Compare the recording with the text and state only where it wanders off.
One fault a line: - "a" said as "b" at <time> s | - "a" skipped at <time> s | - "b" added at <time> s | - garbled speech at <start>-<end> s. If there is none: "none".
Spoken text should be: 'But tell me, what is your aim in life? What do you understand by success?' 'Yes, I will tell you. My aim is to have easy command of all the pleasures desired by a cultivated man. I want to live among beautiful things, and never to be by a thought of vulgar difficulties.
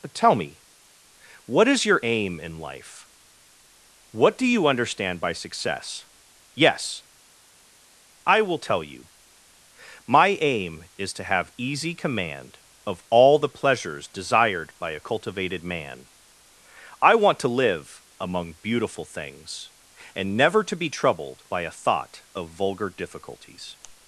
- "troubled" added at 20.9 s